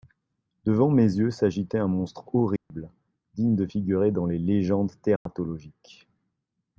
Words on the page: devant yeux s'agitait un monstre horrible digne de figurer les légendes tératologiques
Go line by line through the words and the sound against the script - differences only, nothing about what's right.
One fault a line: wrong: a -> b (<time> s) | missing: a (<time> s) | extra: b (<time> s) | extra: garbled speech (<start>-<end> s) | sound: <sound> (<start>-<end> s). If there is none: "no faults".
extra: mes (0.9 s)
sound: dropout (2.6-2.7 s)
extra: dans (4.1 s)
sound: dropout (5.2-5.3 s)